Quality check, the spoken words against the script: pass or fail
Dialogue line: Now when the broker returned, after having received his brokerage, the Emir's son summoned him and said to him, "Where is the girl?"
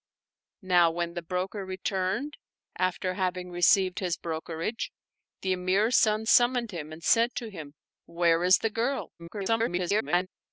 fail